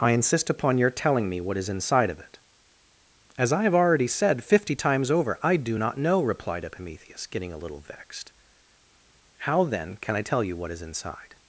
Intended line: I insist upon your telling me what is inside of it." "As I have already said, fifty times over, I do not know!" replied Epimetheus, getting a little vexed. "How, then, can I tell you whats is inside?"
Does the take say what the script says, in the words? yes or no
no